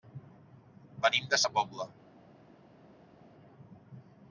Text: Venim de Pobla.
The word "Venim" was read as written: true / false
true